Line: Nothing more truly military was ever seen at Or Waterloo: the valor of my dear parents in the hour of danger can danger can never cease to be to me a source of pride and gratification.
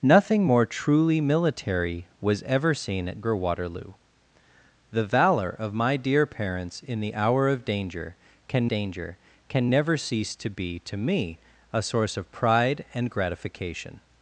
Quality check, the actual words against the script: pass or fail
pass